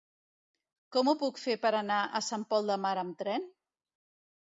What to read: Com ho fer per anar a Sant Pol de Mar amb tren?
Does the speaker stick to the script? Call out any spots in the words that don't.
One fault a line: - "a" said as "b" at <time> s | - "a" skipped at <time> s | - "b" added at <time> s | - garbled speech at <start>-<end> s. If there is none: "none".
- "puc" added at 1.2 s